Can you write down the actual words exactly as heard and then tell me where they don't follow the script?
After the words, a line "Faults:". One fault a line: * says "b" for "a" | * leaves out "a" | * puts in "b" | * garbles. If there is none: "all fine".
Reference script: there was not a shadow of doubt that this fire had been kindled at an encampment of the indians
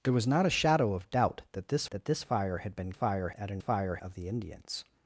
there was not a shadow of doubt that this that this fire had been fire at an fire of the indians
Faults:
* puts in "that this"
* says "fire" for "kindled"
* says "fire" for "encampment"